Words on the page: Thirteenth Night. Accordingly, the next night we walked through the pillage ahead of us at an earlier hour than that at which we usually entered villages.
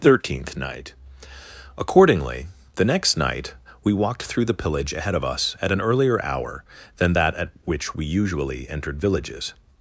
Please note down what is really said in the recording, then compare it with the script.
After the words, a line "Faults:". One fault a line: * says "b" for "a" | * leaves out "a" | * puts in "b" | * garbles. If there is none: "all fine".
Thirteenth Night. Accordingly, the next night we walked through the pillage ahead of us at an earlier hour than that at which we usually entered villages.
Faults:
all fine